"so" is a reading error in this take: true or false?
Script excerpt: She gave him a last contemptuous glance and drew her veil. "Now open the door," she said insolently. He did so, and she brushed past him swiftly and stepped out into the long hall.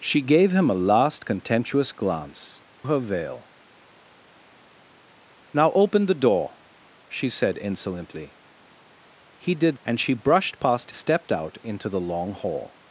true